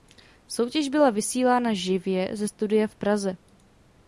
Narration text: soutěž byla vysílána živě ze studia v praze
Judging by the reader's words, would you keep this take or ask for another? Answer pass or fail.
pass